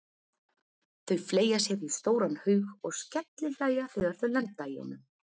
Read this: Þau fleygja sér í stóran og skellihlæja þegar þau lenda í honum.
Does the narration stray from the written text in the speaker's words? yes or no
yes